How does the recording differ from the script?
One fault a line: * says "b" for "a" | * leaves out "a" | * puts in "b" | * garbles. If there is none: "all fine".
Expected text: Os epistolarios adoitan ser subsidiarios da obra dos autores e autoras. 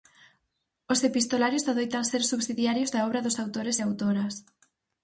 all fine